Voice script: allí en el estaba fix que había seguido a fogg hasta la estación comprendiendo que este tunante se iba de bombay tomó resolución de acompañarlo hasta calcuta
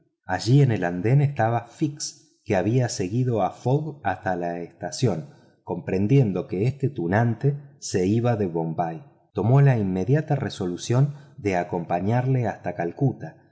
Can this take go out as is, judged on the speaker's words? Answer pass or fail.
fail